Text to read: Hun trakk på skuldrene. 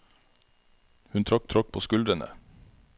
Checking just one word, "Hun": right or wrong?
right